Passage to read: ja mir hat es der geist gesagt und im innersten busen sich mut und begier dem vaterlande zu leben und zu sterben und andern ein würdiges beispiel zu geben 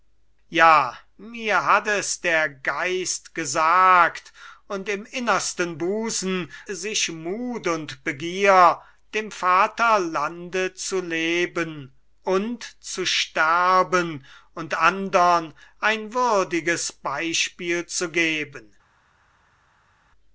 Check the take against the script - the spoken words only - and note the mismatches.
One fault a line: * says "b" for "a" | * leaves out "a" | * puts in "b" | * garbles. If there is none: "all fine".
all fine